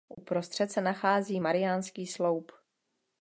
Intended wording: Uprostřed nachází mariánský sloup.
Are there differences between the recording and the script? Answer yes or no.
yes